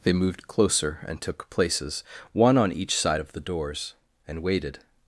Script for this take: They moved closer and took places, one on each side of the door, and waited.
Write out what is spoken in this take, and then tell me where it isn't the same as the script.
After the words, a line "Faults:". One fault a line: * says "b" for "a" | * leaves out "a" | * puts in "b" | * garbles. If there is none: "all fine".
They moved closer and took places, one on each side of the doors, and waited.
Faults:
* says "doors" for "door"